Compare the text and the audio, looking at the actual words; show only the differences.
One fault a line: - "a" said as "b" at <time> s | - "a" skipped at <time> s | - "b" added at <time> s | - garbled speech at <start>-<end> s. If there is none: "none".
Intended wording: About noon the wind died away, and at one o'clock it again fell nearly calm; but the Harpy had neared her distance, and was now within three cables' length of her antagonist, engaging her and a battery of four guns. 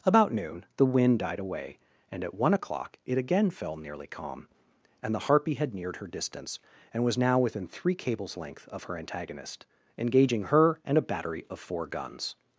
- "but" said as "and" at 5.0 s